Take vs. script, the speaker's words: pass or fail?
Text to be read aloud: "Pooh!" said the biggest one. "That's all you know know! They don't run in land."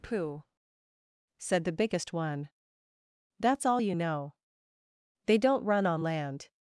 fail